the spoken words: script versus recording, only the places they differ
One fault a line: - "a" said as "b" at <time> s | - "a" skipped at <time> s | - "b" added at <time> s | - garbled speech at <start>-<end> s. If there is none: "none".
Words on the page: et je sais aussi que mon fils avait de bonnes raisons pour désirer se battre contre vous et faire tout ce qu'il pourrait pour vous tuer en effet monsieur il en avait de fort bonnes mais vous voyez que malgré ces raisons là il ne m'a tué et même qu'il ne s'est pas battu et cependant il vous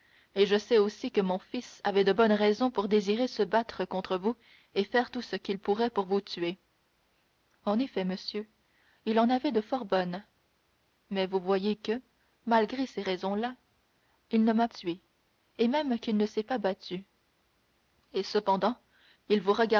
none